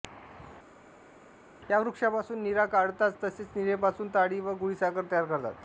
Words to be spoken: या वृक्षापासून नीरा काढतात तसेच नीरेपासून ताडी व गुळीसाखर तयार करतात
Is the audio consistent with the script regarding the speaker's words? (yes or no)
yes